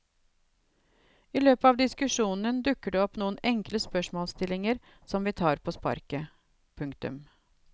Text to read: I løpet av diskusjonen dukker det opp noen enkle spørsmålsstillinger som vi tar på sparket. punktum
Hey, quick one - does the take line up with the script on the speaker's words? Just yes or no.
yes